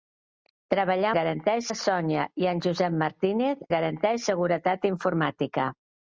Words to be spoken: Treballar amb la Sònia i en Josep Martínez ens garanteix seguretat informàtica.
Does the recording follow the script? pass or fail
fail